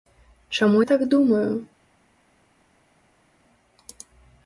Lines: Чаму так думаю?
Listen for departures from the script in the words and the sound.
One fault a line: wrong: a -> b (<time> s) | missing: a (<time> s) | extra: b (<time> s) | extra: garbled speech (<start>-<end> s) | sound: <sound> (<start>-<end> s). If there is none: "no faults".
no faults